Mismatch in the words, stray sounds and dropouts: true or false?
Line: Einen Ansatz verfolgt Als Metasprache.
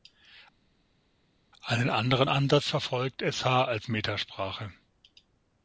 true